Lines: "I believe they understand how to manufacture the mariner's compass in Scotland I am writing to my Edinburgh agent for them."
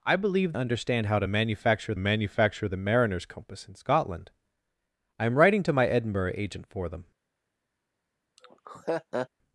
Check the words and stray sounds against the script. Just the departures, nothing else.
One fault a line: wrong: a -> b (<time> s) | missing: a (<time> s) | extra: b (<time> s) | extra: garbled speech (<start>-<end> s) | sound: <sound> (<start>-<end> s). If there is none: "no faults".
missing: they (0.5 s)
extra: manufacture (2.0 s)
sound: laugh (8.4-9.3 s)